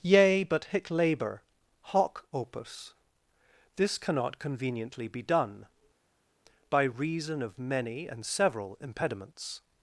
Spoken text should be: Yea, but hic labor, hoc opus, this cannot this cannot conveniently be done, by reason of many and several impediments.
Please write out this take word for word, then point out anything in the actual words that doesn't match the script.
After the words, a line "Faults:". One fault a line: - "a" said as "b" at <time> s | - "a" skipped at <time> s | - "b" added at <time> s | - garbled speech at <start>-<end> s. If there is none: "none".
Yea, but hic labor, hoc opus, this cannot conveniently be done, by reason of many and several impediments.
Faults:
- "this cannot" skipped at 4.4 s